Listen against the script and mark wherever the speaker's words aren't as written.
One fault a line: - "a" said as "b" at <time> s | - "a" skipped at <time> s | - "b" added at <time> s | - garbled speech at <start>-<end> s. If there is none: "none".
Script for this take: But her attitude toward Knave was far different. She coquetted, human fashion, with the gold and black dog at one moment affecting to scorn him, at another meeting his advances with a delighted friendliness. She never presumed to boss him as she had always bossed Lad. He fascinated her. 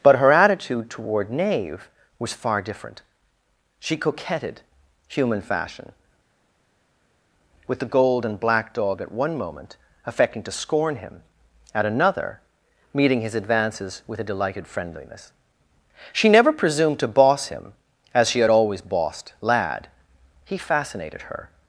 none